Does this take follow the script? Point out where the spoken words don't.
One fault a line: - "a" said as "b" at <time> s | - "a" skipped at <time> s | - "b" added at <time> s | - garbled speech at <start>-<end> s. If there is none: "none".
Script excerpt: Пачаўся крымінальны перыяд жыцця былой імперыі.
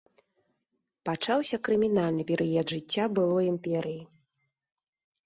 none